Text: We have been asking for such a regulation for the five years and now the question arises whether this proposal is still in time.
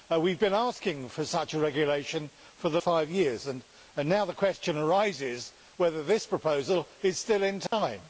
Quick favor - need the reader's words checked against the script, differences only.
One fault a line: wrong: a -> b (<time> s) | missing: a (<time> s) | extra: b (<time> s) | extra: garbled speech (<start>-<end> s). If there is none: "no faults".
no faults